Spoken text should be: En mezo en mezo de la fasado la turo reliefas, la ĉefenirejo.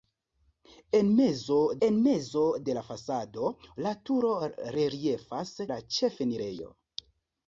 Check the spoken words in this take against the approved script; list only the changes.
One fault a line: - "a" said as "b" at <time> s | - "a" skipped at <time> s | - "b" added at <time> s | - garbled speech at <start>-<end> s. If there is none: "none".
none